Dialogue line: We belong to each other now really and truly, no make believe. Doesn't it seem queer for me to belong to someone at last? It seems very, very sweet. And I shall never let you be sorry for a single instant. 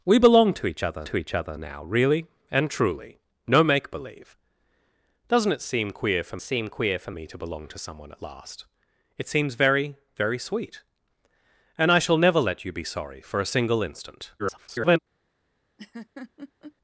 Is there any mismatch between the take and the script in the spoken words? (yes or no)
yes